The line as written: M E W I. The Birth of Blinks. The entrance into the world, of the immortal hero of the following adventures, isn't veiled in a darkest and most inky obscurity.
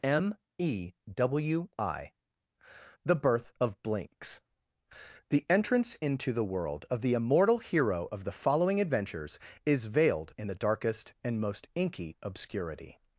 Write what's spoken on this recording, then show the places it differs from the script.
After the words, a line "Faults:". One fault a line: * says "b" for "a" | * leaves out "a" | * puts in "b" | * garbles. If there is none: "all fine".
M E W I. The Birth of Blinks. The entrance into the world, of the immortal hero of the following adventures, is veiled in the darkest and most inky obscurity.
Faults:
* says "is" for "isn't"
* says "the" for "a"